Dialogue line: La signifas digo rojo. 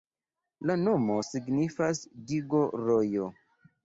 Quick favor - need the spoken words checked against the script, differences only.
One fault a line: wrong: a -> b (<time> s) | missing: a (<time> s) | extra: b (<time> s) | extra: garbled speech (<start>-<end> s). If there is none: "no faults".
extra: nomo (0.8 s)